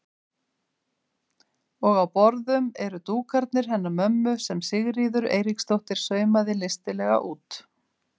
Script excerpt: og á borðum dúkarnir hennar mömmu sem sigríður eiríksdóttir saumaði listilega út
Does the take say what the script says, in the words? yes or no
no